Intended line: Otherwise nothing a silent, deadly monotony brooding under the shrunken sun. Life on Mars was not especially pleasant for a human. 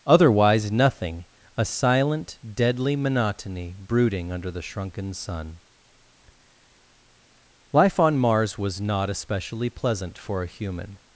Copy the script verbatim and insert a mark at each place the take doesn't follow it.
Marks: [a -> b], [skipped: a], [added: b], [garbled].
Otherwise nothing a silent, deadly monotony brooding under the shrunken sun. Life on Mars was not especially pleasant for a human.